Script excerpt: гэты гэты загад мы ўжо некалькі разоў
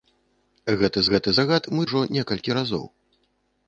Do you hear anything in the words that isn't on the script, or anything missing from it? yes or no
no